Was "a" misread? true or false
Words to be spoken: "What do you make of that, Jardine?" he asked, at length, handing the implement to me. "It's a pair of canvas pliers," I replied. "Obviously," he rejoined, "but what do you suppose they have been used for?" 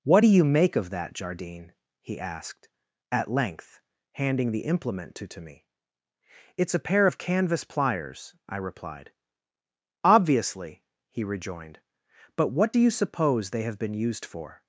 false